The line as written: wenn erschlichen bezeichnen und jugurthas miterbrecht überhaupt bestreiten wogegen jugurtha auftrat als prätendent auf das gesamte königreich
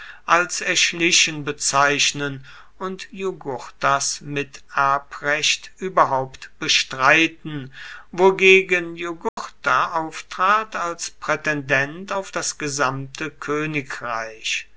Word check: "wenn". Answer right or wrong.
wrong